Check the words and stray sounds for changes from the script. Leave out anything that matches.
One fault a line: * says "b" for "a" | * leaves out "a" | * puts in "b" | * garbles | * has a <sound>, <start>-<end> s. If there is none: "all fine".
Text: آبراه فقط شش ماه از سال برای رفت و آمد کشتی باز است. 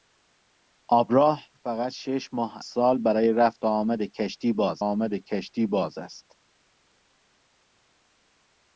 * leaves out "از"
* puts in "آمد کشتی باز"